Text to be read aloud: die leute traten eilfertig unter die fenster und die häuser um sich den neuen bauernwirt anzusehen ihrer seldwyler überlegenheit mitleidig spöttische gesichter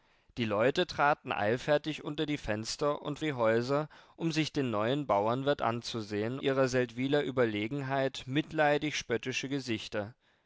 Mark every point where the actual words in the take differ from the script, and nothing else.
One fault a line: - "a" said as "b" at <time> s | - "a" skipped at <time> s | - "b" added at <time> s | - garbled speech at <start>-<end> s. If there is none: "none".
none